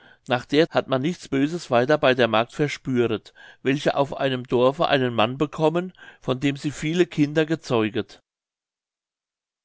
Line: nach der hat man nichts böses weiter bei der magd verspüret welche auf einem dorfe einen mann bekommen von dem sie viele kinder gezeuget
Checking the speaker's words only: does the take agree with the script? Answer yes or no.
yes